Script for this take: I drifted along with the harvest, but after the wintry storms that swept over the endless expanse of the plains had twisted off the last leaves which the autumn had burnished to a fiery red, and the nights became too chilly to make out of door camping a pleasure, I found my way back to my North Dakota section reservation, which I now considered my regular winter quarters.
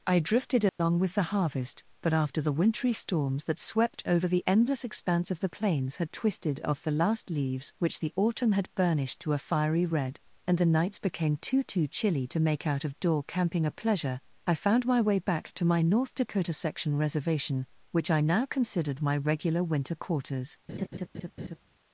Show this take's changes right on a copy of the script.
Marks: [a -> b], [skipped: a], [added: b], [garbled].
I drifted along with the harvest, but after the wintry storms that swept over the endless expanse of the plains had twisted off the last leaves which the autumn had burnished to a fiery red, and the nights became too [added: too] chilly to make out of door camping a pleasure, I found my way back to my North Dakota section reservation, which I now considered my regular winter quarters.